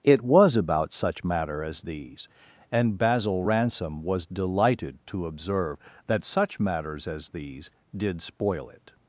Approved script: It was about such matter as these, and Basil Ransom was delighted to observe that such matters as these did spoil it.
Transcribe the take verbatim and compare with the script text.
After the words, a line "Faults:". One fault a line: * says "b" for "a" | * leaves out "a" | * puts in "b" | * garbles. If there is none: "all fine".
It was about such matter as these, and Basil Ransom was delighted to observe that such matters as these did spoil it.
Faults:
all fine